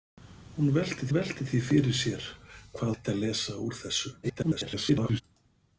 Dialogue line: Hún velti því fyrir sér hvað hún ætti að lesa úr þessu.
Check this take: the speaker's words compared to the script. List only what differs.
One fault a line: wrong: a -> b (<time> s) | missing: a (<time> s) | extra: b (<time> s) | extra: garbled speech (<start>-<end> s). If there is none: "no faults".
extra: velti (1.2 s)
missing: hún (2.9 s)
extra: garbled speech (4.2-5.2 s)